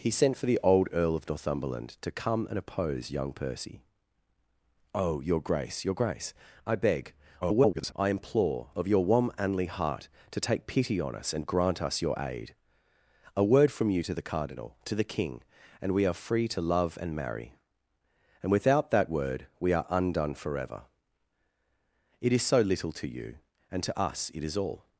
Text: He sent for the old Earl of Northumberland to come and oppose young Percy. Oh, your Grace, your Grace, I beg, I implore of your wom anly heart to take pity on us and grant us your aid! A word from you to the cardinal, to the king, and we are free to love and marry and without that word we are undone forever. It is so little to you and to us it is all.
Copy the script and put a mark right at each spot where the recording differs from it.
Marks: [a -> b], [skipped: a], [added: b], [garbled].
He sent for the old Earl of Northumberland to come and oppose young Percy. Oh, your Grace, your Grace, I beg, [garbled] I implore of your wom anly heart to take pity on us and grant us your aid! A word from you to the cardinal, to the king, and we are free to love and marry and without that word we are undone forever. It is so little to you and to us it is all.